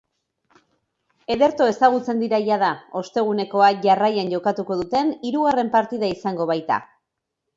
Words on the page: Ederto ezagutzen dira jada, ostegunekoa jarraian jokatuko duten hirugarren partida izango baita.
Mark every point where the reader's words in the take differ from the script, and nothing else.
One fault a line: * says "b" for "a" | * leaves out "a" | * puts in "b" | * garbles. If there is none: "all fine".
all fine